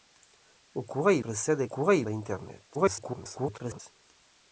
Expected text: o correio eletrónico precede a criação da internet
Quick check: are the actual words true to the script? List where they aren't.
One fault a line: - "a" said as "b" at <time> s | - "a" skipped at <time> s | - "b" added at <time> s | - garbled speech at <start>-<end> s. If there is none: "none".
- "eletrónico" skipped at 1.2 s
- "criação" said as "correio" at 1.6 s
- garbled speech at 2.7-3.8 s